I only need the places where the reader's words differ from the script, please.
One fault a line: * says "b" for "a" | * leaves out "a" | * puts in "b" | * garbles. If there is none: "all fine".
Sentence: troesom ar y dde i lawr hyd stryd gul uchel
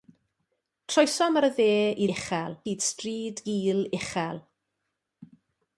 * says "uchel" for "lawr"